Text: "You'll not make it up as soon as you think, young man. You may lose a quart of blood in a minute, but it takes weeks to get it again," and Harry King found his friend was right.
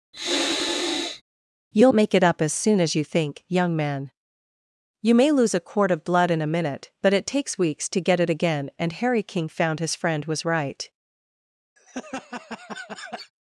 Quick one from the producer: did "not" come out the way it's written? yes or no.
no